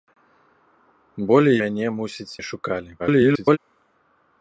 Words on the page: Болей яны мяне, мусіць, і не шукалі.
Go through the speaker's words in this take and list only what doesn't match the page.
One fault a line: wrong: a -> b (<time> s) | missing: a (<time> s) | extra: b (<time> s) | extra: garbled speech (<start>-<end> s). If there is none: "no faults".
missing: яны (1.6 s)
missing: і (2.3 s)
extra: garbled speech (3.0-3.6 s)